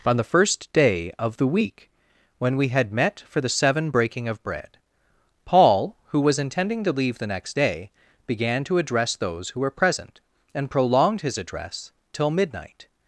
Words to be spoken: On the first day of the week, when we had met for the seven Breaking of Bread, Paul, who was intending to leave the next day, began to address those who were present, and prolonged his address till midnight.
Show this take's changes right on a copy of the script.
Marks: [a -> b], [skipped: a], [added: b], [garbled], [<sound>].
On the first day of the week, when we had met for the seven Breaking of Bread, Paul, who was intending to leave the next day, began to address those who were present, and prolonged his address till midnight.